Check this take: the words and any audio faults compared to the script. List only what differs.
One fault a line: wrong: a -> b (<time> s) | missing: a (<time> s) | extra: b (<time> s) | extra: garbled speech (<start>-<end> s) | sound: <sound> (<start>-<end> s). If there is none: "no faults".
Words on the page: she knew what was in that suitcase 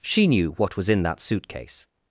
no faults